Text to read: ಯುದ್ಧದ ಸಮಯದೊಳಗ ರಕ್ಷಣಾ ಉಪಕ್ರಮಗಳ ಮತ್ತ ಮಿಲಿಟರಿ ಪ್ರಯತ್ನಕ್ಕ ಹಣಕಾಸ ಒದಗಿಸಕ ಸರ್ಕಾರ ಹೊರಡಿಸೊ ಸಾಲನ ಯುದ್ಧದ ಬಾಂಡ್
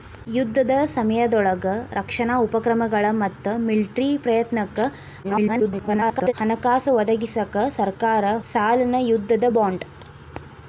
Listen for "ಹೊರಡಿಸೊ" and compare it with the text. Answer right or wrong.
wrong